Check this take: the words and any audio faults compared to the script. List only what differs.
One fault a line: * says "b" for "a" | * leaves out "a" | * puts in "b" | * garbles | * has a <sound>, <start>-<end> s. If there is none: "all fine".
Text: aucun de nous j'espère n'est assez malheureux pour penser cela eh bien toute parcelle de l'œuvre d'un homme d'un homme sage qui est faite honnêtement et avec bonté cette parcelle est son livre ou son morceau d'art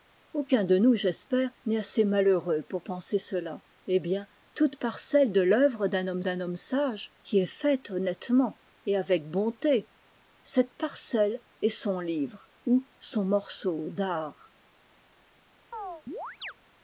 * has a chirp, 15.7-16.5 s